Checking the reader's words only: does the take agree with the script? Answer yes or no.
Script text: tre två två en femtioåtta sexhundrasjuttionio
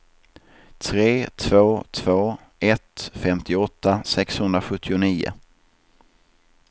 no